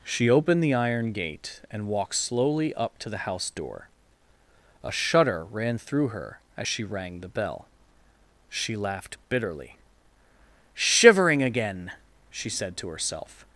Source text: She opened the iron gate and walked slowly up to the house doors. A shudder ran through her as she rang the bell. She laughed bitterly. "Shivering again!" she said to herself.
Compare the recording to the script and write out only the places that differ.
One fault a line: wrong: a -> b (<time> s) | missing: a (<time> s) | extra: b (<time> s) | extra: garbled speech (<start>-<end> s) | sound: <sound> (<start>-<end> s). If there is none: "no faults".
wrong: doors -> door (3.5 s)